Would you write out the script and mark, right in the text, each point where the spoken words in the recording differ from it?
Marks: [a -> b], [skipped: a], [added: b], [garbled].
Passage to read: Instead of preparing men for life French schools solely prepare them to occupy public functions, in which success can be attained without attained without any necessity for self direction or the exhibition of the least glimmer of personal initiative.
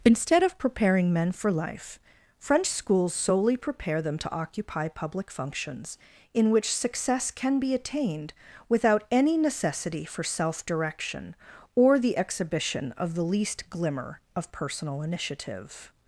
Instead of preparing men for life French schools solely prepare them to occupy public functions, in which success can be attained without [skipped: attained without] any necessity for self direction or the exhibition of the least glimmer of personal initiative.